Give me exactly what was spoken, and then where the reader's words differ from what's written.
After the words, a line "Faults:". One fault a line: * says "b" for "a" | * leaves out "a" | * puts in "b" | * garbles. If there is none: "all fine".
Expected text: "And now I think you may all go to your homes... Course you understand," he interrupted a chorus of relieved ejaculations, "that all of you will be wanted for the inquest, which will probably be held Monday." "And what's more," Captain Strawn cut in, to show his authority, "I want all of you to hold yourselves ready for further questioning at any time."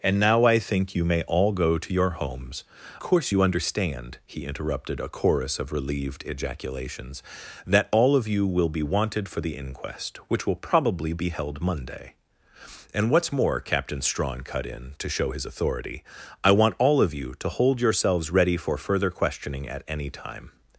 "And now I think you may all go to your homes... Course you understand," he interrupted a chorus of relieved ejaculations, "that all of you will be wanted for the inquest, which will probably be held Monday." "And what's more," Captain Strawn cut in, to show his authority, "I want all of you to hold yourselves ready for further questioning at any time."
Faults:
all fine